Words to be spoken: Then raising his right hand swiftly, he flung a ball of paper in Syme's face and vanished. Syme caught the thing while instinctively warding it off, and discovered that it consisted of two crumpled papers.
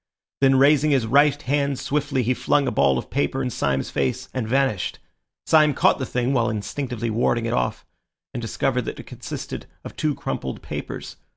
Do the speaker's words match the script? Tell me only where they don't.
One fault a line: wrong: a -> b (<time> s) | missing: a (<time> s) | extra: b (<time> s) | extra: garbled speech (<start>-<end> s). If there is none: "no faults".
no faults